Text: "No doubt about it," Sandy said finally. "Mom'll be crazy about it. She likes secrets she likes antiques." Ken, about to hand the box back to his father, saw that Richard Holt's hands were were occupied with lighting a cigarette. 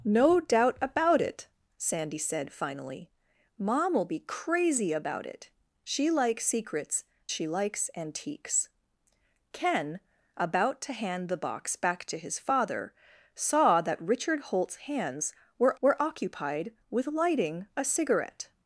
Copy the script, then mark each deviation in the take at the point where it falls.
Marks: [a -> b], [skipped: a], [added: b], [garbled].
"No doubt about it," Sandy said finally. "Mom'll be crazy about it. She likes secrets she likes antiques." Ken, about to hand the box back to his father, saw that Richard Holt's hands were were occupied with lighting a cigarette.